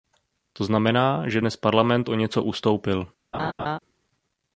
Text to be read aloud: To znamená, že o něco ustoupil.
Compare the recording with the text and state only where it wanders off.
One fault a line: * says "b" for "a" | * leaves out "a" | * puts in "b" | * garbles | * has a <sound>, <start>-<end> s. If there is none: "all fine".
* puts in "dnes Parlament"
* has a laugh, 3.3-3.8 s